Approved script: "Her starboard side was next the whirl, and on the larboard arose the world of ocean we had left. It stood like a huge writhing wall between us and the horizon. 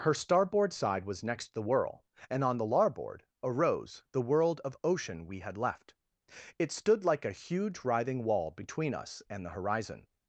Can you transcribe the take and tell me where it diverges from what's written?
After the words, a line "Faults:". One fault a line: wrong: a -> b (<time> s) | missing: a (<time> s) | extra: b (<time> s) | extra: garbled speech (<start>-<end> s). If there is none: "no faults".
"Her starboard side was next the whirl, and on the larboard arose the world of ocean we had left. It stood like a huge writhing wall between us and the horizon.
Faults:
no faults